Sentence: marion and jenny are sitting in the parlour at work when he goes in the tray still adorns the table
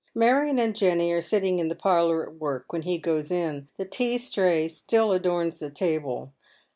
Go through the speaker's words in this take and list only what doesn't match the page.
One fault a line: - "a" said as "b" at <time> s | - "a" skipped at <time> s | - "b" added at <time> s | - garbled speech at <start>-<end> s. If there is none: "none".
- "tea" added at 3.9 s